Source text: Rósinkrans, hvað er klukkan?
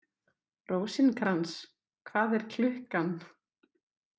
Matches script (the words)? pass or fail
pass